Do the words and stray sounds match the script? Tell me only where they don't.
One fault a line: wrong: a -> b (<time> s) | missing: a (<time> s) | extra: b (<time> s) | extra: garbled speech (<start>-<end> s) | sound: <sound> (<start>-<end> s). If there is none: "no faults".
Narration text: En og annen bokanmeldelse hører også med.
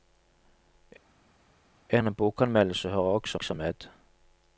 missing: og (2.0 s)
extra: også (3.3 s)